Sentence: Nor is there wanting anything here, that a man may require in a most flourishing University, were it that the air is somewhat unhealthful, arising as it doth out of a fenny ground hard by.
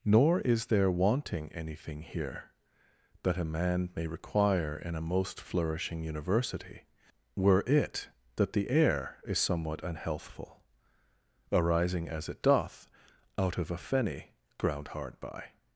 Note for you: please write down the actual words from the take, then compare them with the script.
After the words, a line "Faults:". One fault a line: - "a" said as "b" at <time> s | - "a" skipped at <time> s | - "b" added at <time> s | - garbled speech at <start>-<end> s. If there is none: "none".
Nor is there wanting anything here, that a man may require in a most flourishing University, were it that the air is somewhat unhealthful, arising as it doth out of a fenny ground hard by.
Faults:
none